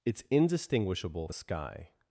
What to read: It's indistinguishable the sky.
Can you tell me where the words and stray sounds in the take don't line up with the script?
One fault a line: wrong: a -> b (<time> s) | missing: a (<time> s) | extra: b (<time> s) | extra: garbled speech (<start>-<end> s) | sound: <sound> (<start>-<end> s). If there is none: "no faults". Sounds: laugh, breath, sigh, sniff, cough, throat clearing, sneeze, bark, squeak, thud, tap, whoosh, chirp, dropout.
no faults